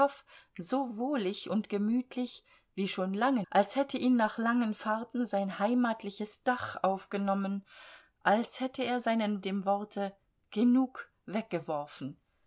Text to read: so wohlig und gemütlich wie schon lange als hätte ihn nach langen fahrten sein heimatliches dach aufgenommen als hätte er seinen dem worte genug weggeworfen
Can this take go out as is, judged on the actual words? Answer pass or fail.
pass